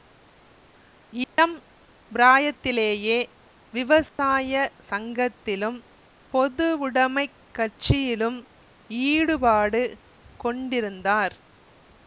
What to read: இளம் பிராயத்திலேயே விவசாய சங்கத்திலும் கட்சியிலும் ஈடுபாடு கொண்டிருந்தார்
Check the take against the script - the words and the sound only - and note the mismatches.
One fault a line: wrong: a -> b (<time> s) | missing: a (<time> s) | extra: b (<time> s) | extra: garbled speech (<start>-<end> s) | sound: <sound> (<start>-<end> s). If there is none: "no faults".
sound: dropout (1.2-1.4 s)
sound: dropout (4.1-4.2 s)
extra: பொதுவுடைமைக் (6.3 s)